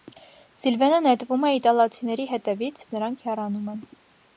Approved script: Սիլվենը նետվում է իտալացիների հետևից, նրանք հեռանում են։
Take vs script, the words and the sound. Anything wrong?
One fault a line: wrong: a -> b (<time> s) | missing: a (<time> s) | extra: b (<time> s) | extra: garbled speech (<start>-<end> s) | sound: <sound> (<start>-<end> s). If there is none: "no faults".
no faults